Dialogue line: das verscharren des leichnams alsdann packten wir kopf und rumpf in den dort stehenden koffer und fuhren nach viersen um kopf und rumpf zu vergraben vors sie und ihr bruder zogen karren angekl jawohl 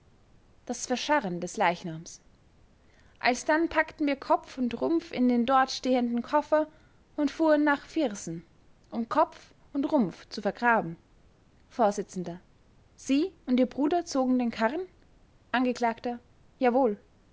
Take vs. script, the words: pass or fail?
fail